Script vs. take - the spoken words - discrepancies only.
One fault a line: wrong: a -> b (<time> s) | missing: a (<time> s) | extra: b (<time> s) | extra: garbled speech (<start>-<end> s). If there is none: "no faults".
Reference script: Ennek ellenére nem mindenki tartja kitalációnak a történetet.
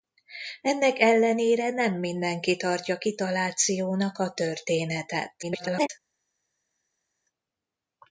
extra: garbled speech (5.4-5.9 s)